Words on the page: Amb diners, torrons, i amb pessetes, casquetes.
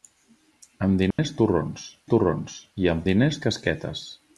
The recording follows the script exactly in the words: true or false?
false